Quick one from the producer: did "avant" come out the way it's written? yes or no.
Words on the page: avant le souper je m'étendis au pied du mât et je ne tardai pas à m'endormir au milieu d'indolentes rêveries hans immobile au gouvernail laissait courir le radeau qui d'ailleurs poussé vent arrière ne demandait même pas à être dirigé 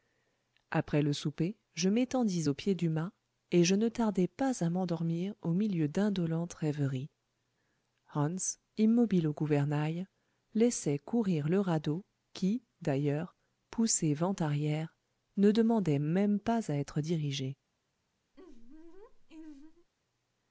no